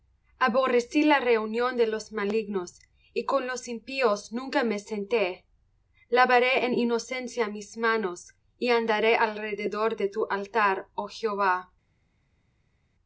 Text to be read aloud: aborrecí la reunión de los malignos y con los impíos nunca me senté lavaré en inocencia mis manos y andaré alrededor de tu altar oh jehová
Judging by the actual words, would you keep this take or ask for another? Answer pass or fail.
pass